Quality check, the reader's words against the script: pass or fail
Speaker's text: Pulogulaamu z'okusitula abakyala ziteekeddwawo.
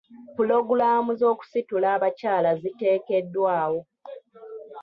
pass